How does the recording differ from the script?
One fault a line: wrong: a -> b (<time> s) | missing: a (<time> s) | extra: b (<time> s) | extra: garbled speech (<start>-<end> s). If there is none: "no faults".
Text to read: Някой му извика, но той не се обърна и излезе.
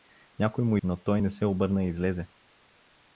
missing: извика (0.8 s)